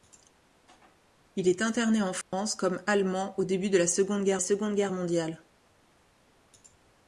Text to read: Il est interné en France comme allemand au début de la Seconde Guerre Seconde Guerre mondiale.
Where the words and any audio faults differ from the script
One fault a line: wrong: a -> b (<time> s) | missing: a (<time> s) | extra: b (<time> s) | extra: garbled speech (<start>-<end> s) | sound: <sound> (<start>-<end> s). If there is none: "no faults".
sound: dropout (2.2-2.3 s)